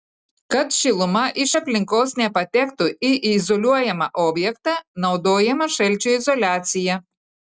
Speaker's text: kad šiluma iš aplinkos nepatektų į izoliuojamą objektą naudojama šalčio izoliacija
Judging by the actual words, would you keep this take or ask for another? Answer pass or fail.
pass